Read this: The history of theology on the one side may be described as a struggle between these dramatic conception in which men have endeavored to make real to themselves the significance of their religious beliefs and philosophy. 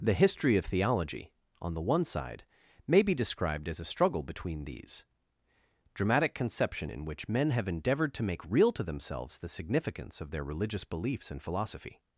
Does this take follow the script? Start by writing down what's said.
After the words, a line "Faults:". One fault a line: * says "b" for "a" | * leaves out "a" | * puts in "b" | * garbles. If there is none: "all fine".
The history of theology on the one side may be described as a struggle between these dramatic conception in which men have endeavored to make real to themselves the significance of their religious beliefs and philosophy.
Faults:
all fine